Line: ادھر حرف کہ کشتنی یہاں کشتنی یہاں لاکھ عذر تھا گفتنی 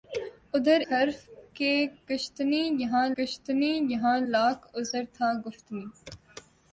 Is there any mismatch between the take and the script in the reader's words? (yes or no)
no